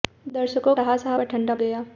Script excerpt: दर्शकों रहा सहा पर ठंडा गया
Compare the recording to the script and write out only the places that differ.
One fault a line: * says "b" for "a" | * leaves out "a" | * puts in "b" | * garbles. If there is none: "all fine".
all fine